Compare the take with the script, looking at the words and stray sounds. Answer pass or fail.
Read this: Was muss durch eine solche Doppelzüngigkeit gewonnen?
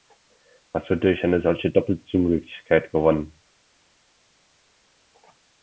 fail